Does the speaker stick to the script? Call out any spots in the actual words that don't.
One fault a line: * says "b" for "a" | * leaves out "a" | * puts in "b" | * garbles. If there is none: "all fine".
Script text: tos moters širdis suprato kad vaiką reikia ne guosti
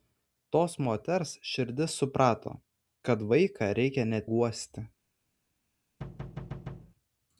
all fine